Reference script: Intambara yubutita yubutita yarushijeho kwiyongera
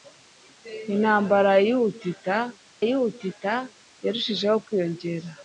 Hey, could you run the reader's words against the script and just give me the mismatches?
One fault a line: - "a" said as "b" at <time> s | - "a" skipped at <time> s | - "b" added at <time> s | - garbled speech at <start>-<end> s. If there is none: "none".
none